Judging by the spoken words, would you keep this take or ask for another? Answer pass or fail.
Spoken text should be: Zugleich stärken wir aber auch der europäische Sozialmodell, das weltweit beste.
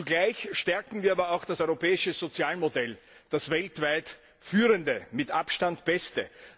fail